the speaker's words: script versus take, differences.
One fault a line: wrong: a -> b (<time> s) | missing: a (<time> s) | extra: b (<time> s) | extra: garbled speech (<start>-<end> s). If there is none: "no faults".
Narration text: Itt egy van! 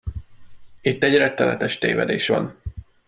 extra: rettenetes tévedés (1.2 s)